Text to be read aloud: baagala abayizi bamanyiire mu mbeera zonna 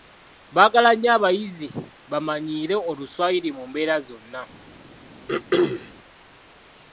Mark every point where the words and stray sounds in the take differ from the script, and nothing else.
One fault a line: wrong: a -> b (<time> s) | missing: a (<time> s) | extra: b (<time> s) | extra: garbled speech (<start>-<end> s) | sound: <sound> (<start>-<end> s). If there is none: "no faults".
extra: nnyo (0.9 s)
extra: oluswayiri (2.9 s)
sound: throat clearing (5.3-5.9 s)